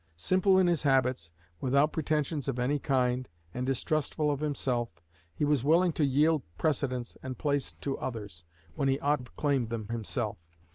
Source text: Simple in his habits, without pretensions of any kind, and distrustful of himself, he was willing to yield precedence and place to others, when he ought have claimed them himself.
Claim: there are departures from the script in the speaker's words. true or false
false